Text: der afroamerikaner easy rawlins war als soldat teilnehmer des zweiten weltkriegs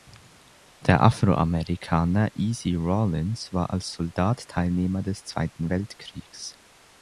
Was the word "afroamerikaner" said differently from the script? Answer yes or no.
no